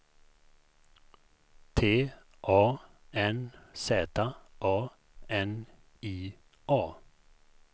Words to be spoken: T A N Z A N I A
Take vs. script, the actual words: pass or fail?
pass